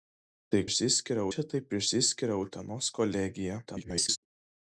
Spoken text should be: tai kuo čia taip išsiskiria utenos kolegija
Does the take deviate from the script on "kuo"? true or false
true